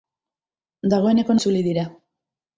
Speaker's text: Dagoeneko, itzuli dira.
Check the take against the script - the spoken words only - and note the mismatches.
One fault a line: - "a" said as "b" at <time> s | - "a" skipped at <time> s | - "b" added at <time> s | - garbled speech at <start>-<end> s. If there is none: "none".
none